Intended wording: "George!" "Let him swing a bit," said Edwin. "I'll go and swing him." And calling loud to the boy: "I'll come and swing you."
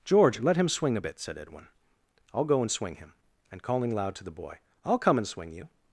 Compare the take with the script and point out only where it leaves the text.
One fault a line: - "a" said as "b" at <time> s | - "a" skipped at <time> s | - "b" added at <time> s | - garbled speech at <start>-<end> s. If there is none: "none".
none